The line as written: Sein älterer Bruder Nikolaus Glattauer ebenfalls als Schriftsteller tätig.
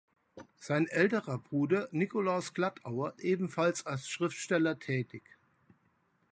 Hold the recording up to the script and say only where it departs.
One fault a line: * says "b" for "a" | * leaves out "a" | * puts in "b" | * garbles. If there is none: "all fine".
all fine